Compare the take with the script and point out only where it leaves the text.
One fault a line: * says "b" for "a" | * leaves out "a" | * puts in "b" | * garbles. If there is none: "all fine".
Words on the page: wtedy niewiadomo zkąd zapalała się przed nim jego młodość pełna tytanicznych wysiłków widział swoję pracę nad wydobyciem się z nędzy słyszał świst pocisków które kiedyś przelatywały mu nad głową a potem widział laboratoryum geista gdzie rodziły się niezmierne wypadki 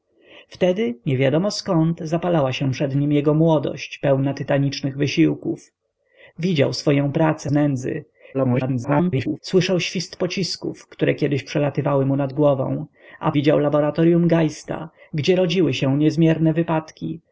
* leaves out "nad wydobyciem się"
* garbles
* leaves out "potem"